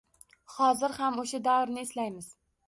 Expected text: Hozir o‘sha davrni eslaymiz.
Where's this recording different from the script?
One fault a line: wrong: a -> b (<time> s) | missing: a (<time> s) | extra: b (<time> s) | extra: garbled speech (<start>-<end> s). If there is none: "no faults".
extra: ham (1.0 s)